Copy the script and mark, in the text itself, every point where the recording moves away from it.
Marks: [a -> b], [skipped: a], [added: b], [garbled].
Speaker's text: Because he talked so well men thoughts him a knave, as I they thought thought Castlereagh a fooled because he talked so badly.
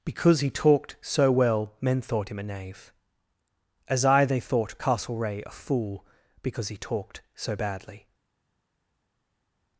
Because he talked so well men [thoughts -> thought] him a knave, as I they thought [skipped: thought] Castlereagh a [fooled -> fool] because he talked so badly.